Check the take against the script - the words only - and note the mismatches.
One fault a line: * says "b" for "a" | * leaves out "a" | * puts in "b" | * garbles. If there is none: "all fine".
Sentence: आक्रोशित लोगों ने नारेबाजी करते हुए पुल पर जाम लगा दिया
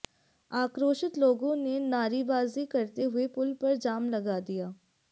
all fine